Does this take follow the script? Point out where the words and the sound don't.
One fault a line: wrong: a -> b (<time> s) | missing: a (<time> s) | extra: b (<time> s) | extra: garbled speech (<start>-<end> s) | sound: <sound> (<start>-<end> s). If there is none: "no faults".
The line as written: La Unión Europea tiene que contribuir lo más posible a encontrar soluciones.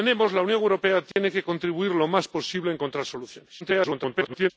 sound: dropout (1.1-1.2 s)
extra: garbled speech (3.6-4.5 s)